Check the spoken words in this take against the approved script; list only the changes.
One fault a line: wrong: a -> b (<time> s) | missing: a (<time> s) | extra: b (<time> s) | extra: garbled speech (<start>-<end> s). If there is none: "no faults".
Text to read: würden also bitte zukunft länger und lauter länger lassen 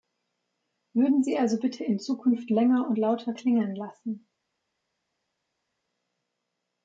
extra: sie (1.2 s)
extra: in (1.8 s)
wrong: länger -> klingeln (3.3 s)